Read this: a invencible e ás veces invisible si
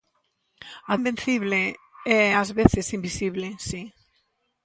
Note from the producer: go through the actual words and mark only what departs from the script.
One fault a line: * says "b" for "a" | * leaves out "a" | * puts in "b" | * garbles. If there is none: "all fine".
all fine